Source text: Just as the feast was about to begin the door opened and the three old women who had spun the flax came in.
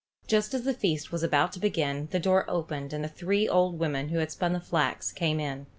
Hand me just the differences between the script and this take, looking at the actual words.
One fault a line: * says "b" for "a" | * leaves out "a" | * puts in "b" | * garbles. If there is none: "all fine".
all fine